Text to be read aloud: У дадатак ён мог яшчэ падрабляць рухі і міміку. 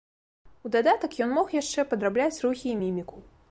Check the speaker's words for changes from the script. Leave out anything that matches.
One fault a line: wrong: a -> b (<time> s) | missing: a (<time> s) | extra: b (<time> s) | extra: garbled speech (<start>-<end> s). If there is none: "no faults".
no faults